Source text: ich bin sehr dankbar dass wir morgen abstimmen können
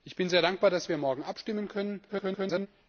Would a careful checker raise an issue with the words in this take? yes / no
yes